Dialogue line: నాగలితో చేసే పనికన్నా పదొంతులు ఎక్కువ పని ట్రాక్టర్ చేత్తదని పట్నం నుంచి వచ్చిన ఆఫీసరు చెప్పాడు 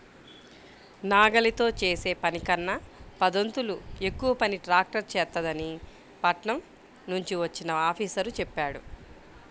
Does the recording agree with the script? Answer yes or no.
yes